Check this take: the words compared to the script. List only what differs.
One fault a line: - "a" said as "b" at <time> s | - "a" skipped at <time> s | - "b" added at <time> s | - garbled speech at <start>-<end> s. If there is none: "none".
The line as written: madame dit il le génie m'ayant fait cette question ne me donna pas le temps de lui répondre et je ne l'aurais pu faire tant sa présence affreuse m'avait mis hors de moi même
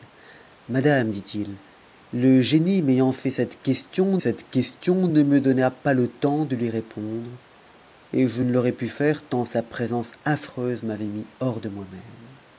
- "cette question" added at 4.2 s